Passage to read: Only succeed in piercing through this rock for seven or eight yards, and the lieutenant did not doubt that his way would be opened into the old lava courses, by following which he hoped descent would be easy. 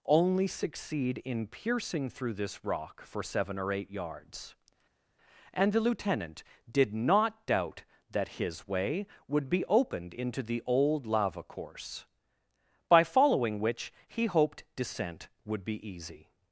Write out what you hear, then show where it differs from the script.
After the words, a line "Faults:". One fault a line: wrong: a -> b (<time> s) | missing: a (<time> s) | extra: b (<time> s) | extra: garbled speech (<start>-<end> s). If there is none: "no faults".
Only succeed in piercing through this rock for seven or eight yards, and the lieutenant did not doubt that his way would be opened into the old lava course, by following which he hoped descent would be easy.
Faults:
wrong: courses -> course (11.4 s)